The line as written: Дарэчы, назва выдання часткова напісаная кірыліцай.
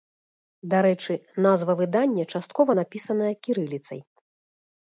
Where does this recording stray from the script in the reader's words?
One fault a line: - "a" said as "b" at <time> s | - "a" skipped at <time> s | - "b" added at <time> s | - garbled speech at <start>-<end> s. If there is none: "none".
none